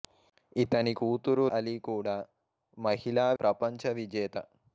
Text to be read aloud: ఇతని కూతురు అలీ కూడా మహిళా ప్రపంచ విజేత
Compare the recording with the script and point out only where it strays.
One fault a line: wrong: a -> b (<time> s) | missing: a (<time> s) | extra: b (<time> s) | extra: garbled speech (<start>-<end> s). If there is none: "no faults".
no faults